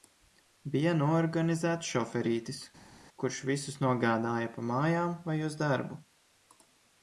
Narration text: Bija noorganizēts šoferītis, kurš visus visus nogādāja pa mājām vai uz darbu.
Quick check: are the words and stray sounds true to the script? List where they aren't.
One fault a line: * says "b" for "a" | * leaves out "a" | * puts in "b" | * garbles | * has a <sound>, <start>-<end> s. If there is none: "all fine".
* leaves out "visus"